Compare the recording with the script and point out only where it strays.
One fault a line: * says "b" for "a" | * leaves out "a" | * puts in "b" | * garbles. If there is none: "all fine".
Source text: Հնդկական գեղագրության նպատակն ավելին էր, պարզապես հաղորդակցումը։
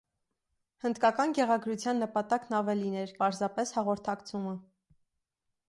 all fine